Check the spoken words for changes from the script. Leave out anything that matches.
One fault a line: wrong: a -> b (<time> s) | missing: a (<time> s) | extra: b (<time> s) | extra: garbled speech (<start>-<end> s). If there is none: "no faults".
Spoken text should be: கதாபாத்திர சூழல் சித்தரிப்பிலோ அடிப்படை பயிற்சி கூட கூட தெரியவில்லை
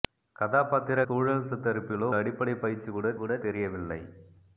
no faults